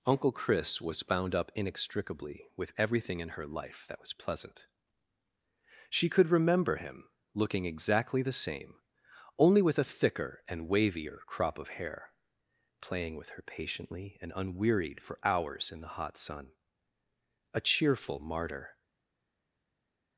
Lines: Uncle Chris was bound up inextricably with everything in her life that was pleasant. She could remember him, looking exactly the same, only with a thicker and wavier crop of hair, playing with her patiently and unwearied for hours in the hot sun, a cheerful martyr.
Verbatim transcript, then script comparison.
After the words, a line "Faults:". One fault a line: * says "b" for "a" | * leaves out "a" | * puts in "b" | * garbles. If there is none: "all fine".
Uncle Chris was bound up inextricably with everything in her life that was pleasant. She could remember him, looking exactly the same, only with a thicker and wavier crop of hair, playing with her patiently and unwearied for hours in the hot sun, a cheerful martyr.
Faults:
all fine